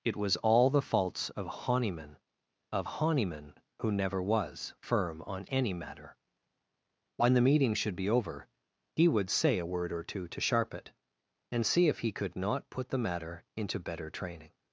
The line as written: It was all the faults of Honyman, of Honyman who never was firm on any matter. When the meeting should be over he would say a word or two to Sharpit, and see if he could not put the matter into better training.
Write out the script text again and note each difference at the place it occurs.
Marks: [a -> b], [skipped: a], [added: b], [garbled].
It was all the faults of Honyman, of Honyman who never was firm on any matter. When the meeting should be over he would say a word or two to Sharpit, and see if he could not put the matter into better training.